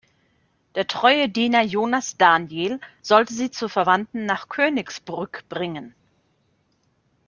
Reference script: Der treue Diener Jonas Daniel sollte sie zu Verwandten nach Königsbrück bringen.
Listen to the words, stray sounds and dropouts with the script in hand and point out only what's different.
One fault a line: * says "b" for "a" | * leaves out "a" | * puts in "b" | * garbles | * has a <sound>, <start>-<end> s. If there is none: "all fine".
all fine